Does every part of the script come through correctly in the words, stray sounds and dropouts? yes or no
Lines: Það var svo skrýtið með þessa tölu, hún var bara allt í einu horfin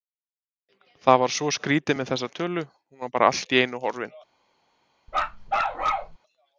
no